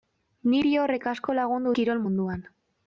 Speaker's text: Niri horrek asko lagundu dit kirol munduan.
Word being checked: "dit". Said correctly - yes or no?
no